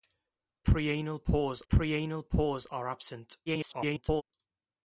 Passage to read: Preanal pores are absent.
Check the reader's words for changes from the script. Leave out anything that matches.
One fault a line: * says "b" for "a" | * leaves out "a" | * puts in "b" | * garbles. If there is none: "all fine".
* puts in "preanal pores"
* garbles